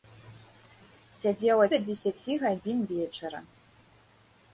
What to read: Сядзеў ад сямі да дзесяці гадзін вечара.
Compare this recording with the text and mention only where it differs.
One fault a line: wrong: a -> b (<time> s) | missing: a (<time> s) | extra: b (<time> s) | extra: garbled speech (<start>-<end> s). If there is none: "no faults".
missing: сямі (1.7 s)